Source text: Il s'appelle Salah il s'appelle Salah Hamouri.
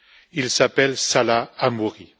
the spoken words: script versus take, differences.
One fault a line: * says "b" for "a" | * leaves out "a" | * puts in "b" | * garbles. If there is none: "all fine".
* leaves out "il s'appelle Salah"